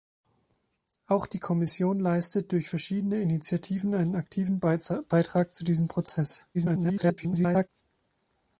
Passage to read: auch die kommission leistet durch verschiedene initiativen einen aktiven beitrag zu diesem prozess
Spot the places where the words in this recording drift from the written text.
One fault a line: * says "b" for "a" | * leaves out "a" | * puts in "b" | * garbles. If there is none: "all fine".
* garbles